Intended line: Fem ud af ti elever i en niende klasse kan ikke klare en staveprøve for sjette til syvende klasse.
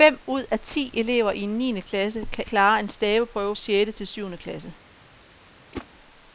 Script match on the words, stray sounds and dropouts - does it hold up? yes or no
no